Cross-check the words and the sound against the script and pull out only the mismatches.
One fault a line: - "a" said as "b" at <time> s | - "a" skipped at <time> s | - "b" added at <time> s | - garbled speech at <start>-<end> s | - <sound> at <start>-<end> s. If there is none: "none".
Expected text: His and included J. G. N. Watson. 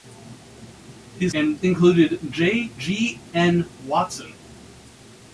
none